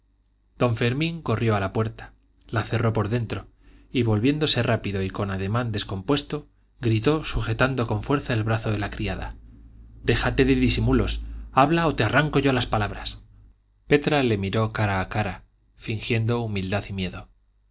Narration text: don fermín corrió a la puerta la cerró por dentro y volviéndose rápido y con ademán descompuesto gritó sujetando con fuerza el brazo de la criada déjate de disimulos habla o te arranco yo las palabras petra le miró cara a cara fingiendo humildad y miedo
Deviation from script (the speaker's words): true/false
false